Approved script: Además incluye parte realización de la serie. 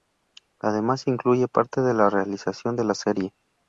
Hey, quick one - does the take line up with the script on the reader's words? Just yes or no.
no